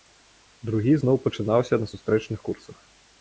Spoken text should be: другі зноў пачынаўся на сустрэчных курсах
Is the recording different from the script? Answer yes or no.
no